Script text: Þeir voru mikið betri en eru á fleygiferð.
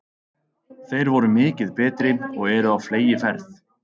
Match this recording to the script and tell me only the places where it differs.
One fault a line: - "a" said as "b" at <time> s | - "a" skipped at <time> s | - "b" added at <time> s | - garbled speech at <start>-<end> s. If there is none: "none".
- "en" said as "og" at 2.3 s